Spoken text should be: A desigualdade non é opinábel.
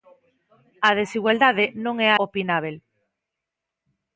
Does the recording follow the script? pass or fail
pass